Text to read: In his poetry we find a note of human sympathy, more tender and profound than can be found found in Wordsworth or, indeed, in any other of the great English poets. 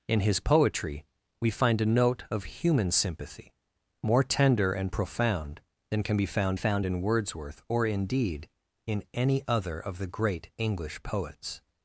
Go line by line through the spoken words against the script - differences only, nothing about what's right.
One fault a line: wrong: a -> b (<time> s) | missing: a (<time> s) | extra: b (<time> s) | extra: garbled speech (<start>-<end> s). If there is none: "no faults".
no faults